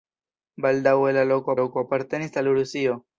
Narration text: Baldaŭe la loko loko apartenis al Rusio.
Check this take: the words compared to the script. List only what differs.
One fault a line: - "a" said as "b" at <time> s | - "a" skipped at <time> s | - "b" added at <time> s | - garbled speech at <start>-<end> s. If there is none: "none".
none